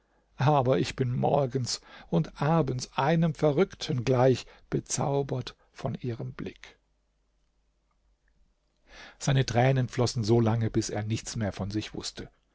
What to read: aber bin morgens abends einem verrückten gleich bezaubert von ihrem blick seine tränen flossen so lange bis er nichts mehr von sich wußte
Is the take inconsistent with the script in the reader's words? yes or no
yes